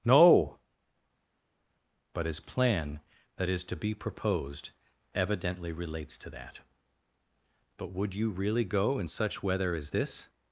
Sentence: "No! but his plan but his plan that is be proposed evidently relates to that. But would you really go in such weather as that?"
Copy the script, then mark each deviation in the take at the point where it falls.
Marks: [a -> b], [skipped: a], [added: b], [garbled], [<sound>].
"No! but his plan [skipped: but his plan] that is [added: to] be proposed evidently relates to that. But would you really go in such weather as [that?" -> this]